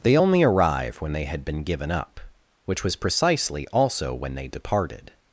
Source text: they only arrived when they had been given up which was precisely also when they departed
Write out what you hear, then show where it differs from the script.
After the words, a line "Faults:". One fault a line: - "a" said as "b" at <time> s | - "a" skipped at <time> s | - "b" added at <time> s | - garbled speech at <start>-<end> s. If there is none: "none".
they only arrive when they had been given up which was precisely also when they departed
Faults:
- "arrived" said as "arrive" at 0.4 s